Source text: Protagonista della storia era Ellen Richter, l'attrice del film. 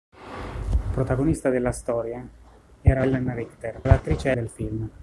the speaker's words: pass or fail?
pass